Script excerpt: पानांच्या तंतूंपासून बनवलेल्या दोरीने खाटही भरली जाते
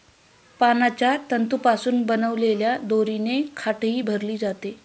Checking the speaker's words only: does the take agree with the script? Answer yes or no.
yes